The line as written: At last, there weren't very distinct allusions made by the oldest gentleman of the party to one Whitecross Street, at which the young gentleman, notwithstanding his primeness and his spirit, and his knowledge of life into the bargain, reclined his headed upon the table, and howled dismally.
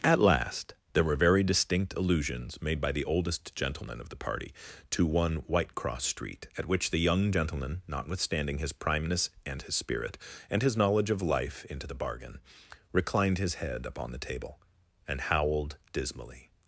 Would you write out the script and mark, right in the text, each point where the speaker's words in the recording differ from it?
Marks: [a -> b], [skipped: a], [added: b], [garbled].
At last, there [weren't -> were] very distinct allusions made by the oldest gentleman of the party to one Whitecross Street, at which the young gentleman, notwithstanding his primeness and his spirit, and his knowledge of life into the bargain, reclined his [headed -> head] upon the table, and howled dismally.